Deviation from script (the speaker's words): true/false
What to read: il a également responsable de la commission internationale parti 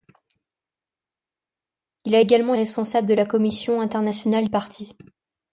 false